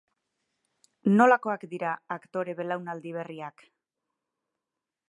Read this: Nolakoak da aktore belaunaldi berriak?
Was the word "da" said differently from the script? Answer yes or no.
yes